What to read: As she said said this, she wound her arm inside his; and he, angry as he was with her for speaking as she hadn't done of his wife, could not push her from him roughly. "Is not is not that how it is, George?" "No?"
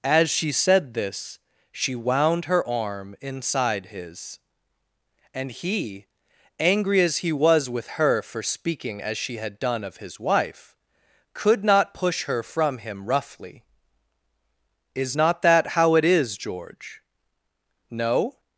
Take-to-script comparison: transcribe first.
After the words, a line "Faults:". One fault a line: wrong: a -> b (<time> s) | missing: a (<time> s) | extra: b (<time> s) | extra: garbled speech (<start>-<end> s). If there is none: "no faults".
As she said this, she wound her arm inside his; and he, angry as he was with her for speaking as she had done of his wife, could not push her from him roughly. "Is not that how it is, George?" "No?"
Faults:
missing: said (0.9 s)
wrong: hadn't -> had (9.4 s)
missing: is not (15.4 s)